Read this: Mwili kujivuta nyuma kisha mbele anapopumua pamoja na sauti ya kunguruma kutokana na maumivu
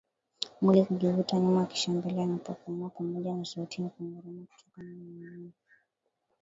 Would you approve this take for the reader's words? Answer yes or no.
yes